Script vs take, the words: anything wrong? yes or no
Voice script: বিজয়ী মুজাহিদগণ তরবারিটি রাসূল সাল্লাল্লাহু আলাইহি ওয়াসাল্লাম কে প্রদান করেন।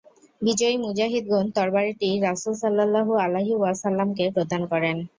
no